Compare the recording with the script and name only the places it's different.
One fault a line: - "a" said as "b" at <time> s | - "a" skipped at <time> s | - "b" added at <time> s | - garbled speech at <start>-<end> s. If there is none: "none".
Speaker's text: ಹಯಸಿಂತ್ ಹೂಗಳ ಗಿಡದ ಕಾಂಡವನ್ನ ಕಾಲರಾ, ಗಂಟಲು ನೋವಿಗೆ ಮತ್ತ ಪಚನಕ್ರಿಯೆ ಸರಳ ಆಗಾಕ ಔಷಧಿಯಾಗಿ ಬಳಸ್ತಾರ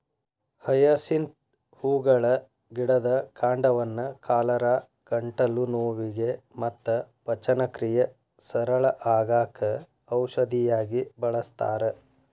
none